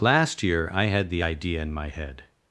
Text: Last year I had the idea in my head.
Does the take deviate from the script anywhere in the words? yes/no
no